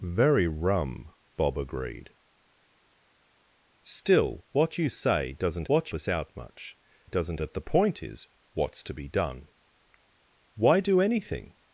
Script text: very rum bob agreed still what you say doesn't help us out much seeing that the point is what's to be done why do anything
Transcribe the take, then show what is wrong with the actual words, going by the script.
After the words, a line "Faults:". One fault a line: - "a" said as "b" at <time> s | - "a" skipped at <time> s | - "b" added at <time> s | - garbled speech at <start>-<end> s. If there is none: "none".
very rum bob agreed still what you say doesn't what us out much doesn't that the point is what's to be done why do anything
Faults:
- "help" said as "what" at 5.7 s
- "seeing" said as "doesn't" at 7.0 s